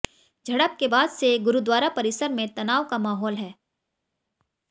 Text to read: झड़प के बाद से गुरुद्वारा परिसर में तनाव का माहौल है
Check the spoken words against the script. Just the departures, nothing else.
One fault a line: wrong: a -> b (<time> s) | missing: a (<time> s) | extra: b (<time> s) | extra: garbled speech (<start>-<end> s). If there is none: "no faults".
no faults